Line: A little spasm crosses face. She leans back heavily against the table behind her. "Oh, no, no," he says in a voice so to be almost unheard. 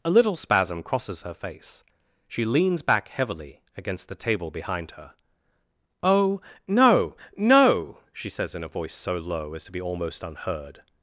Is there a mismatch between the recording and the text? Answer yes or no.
yes